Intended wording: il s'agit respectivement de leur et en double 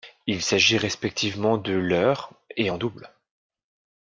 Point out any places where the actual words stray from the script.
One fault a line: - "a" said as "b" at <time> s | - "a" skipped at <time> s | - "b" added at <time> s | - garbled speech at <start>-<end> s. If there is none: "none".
none